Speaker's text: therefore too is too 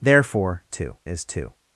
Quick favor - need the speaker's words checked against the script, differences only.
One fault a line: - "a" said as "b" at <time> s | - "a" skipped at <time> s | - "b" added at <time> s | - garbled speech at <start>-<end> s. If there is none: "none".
none